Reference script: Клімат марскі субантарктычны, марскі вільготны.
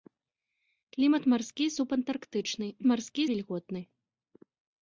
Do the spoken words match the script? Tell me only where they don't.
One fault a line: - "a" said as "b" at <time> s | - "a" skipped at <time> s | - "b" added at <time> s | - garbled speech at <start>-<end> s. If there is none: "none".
none